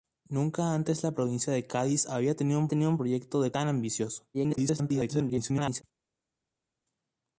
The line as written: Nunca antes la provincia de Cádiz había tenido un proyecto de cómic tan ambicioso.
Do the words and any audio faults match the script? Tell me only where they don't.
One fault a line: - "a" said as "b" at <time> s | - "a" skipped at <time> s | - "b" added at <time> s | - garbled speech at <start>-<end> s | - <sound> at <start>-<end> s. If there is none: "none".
- "tenido un" added at 2.7 s
- "cómic" skipped at 3.5 s
- garbled speech at 4.3-5.8 s